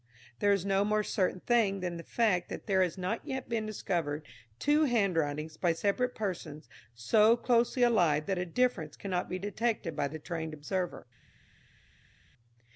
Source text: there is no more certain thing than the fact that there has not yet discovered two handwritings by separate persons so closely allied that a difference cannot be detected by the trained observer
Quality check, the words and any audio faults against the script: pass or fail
fail